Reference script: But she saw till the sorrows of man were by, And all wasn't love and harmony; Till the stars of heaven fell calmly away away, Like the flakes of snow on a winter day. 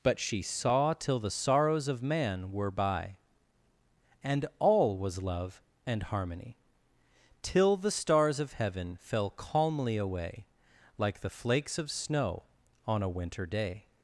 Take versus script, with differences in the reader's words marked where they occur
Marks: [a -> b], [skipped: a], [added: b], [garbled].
But she saw till the sorrows of man were by, And all [wasn't -> was] love and harmony; Till the stars of heaven fell calmly away [skipped: away,] Like the flakes of snow on a winter day.